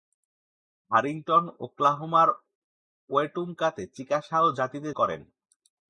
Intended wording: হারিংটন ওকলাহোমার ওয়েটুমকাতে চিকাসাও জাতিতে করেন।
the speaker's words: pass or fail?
pass